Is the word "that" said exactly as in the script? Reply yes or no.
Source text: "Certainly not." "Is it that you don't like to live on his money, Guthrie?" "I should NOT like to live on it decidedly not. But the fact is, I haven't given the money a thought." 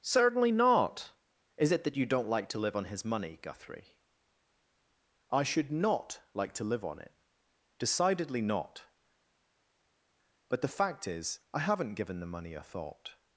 yes